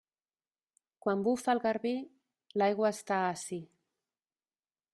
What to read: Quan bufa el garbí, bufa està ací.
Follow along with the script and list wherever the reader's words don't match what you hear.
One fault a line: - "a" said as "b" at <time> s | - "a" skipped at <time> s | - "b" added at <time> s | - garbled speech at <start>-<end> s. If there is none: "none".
- "bufa" said as "l'aigua" at 2.6 s